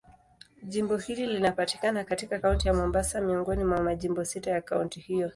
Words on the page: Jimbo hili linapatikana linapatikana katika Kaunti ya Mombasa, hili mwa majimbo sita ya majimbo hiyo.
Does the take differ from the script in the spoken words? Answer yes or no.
yes